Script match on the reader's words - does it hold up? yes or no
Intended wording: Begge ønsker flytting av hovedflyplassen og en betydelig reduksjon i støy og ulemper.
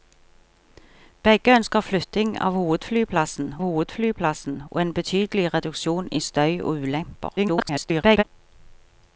no